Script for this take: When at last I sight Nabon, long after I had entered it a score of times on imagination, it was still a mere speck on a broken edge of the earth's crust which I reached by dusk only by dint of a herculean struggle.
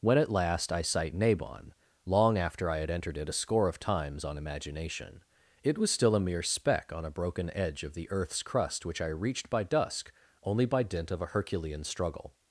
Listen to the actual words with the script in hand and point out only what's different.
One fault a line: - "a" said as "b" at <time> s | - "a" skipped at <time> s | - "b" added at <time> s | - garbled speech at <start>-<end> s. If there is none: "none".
none